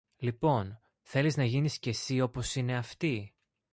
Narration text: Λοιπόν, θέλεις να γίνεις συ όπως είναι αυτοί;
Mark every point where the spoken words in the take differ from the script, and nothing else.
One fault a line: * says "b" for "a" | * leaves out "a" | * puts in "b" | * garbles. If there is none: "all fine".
* puts in "και"